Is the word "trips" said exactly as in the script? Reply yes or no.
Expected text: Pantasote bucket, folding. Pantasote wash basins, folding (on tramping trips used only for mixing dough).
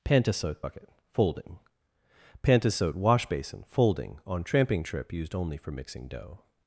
no